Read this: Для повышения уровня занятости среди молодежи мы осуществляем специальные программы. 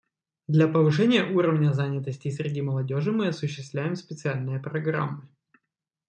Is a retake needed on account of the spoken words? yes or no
no